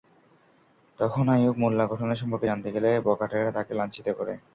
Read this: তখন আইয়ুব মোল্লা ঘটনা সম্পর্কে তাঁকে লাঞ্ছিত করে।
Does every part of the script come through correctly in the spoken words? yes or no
no